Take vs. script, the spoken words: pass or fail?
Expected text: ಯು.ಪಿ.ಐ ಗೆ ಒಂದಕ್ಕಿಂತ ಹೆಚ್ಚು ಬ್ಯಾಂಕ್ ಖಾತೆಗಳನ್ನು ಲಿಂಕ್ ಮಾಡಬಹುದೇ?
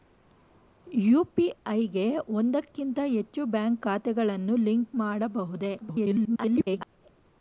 fail